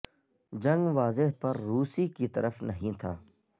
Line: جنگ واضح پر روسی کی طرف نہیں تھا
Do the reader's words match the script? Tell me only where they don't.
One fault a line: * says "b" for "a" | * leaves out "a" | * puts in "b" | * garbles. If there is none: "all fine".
all fine